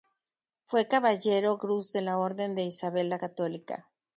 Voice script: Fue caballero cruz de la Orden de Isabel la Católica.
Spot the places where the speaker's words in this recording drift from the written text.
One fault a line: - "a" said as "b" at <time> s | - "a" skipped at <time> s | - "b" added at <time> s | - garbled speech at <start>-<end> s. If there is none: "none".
none